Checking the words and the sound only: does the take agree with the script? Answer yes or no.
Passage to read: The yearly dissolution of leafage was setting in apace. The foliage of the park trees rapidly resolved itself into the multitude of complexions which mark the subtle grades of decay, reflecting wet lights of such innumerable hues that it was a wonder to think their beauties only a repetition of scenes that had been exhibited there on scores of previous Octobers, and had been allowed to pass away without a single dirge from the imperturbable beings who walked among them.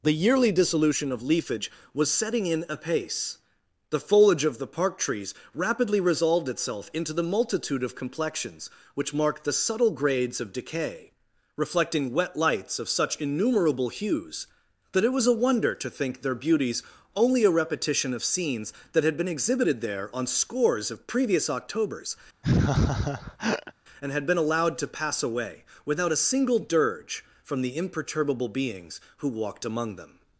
no